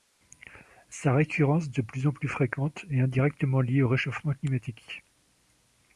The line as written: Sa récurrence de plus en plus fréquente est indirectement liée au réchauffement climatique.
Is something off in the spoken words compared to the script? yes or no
no